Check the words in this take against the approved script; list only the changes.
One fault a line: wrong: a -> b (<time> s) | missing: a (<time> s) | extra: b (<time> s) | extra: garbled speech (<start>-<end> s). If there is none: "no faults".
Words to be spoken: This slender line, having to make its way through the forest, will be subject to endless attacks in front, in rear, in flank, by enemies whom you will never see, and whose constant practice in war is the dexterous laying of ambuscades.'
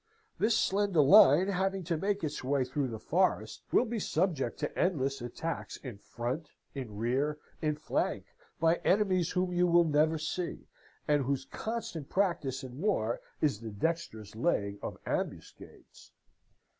no faults